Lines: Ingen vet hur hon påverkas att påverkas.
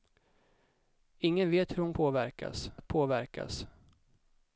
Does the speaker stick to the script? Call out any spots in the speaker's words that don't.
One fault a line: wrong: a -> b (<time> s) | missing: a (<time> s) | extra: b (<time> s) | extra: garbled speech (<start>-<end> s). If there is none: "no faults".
no faults